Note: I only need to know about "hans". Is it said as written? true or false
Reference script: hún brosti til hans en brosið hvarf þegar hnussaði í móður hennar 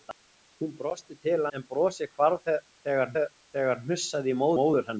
false